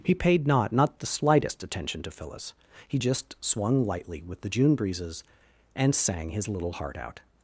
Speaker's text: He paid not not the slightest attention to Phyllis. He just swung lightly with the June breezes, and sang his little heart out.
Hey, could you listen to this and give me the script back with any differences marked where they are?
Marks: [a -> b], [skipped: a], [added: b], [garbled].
He paid not not the slightest attention to Phyllis. He just swung lightly with the June breezes, and sang his little heart out.